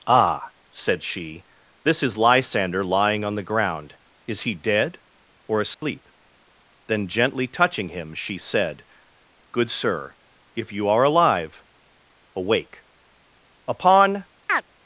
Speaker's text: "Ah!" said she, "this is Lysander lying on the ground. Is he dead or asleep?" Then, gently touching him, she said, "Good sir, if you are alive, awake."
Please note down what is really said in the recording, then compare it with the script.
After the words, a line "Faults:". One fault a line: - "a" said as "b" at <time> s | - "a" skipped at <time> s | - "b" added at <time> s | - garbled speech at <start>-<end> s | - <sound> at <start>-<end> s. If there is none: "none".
"Ah!" said she, "this is Lysander lying on the ground. Is he dead or asleep?" Then, gently touching him, she said, "Good sir, if you are alive, awake." Upon
Faults:
- dropout at 5.7-5.8 s
- "Upon" added at 13.7 s
- chirp at 14.5-14.6 s